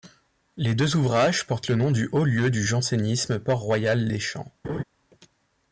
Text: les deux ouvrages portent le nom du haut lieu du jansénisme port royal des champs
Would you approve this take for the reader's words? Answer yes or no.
yes